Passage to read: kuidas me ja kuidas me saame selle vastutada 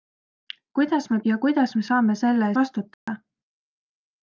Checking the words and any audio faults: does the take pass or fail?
fail